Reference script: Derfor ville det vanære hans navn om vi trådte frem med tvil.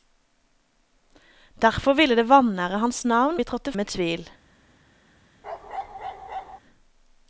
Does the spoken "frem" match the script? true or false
false